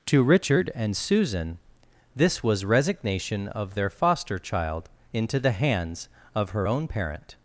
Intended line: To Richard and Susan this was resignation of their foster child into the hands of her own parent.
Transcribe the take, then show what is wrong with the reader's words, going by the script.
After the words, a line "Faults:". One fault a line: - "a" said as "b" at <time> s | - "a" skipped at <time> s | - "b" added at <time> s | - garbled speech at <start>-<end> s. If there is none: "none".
To Richard and Susan this was resignation of their foster child into the hands of her own parent.
Faults:
none